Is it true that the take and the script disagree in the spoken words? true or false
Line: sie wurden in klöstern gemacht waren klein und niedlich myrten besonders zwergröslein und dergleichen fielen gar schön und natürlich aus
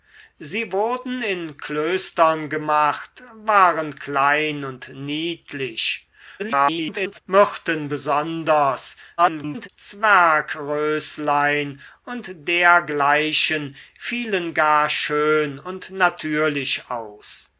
true